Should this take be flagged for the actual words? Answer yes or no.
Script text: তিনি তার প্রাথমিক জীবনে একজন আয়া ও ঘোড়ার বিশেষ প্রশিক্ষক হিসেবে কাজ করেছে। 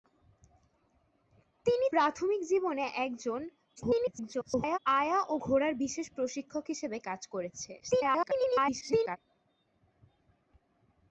yes